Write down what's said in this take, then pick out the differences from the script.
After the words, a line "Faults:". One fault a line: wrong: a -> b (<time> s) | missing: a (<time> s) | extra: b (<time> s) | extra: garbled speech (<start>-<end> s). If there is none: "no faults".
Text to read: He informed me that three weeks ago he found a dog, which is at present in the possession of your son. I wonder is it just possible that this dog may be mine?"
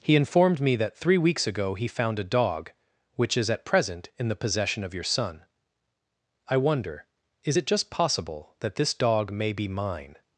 He informed me that three weeks ago he found a dog, which is at present in the possession of your son. I wonder is it just possible that this dog may be mine?"
Faults:
no faults